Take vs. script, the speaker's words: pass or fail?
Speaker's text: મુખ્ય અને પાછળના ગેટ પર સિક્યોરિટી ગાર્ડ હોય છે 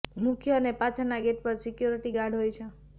pass